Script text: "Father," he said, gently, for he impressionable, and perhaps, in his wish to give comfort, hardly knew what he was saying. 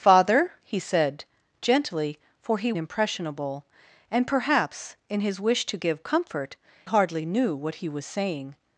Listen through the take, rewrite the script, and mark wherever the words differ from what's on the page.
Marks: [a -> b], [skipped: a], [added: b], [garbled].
"Father," he said, gently, for he impressionable, and perhaps, in his wish to give comfort, hardly knew what he was saying.